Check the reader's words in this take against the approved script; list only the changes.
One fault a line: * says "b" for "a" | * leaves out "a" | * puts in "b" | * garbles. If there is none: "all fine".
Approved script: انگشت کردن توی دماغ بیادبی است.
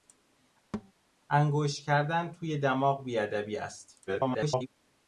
* garbles